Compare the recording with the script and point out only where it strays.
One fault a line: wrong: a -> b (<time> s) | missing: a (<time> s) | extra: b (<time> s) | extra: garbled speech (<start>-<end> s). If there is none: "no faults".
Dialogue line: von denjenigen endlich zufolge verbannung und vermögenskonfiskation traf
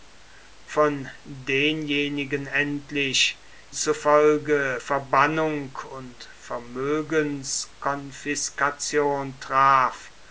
no faults